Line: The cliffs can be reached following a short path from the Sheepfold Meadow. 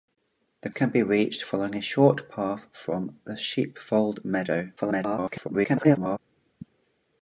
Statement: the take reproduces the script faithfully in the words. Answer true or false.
false